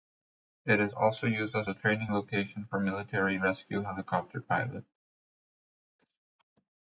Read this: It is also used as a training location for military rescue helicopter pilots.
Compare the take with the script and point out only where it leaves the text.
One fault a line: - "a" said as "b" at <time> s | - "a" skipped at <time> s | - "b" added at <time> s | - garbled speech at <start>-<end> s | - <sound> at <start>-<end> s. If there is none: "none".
none